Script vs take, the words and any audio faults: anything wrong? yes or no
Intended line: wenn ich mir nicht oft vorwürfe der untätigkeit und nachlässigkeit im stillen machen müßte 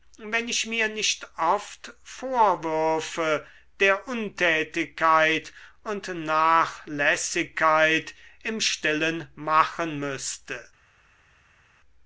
no